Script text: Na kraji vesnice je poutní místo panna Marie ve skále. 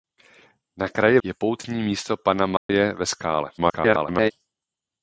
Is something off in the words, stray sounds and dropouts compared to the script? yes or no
yes